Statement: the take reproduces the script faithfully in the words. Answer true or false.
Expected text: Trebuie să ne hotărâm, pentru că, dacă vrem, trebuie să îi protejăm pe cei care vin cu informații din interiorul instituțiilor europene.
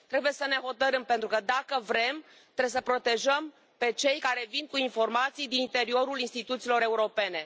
true